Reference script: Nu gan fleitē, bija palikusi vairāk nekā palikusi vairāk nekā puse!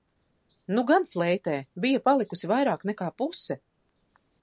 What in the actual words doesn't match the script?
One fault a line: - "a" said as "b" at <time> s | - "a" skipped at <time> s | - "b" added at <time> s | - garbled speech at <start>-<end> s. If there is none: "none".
- "palikusi vairāk nekā" skipped at 3.1 s